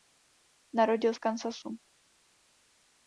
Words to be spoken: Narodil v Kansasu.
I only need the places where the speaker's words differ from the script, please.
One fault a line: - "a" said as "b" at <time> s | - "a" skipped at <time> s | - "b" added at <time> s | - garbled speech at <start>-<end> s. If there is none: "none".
none